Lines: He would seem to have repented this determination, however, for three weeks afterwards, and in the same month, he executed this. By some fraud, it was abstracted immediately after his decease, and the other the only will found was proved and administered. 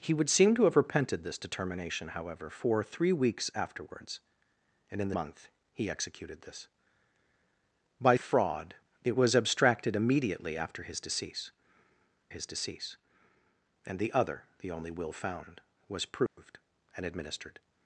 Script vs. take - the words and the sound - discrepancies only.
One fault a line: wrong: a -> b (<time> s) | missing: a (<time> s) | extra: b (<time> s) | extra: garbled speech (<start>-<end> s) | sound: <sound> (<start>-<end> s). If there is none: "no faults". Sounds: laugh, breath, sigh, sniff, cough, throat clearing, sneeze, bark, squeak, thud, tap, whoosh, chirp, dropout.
missing: same (5.2 s)
missing: some (8.2 s)
extra: his decease (12.3 s)
sound: dropout (16.3-16.4 s)